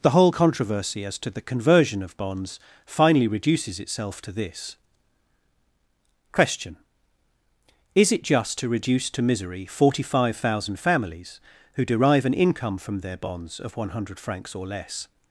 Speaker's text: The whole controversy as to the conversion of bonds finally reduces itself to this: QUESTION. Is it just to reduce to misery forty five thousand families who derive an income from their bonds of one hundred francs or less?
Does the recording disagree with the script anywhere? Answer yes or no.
no